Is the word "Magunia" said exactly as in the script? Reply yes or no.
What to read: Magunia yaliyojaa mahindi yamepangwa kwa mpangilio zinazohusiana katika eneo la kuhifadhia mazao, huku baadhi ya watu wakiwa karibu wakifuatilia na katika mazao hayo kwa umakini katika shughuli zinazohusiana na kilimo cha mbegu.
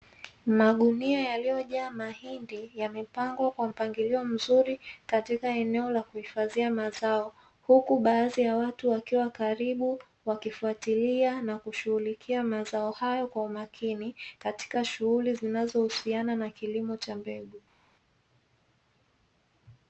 yes